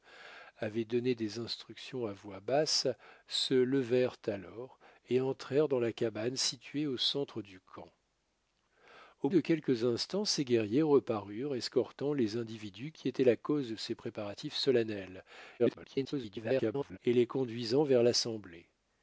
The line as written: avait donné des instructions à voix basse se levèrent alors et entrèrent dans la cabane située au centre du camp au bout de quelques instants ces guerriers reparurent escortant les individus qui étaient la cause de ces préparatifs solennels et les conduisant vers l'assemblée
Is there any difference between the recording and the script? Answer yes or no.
yes